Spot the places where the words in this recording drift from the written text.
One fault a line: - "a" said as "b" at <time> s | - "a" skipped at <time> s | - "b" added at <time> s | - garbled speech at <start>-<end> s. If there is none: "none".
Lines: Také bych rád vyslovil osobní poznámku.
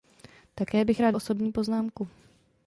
- "vyslovil" skipped at 1.1 s